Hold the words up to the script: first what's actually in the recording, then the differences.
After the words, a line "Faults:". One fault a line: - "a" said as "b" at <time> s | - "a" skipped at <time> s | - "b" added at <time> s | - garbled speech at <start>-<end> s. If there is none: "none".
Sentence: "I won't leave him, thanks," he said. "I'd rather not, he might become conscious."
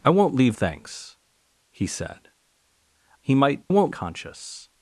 "I won't leave thanks," he said. "He might won't conscious."
Faults:
- "him" skipped at 0.6 s
- "I'd rather not" skipped at 2.3 s
- "become" said as "won't" at 3.7 s